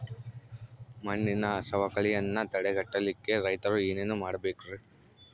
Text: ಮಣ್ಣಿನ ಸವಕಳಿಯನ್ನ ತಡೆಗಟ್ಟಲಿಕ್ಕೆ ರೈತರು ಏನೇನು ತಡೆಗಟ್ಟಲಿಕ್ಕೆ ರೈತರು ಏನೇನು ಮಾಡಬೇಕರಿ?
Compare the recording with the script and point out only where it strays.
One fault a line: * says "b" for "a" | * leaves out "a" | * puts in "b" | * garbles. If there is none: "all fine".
* leaves out "ತಡೆಗಟ್ಟಲಿಕ್ಕೆ ರೈತರು ಏನೇನು"